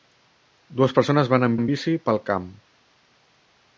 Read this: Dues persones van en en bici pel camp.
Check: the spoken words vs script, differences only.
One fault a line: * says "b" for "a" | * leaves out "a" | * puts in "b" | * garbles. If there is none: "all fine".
all fine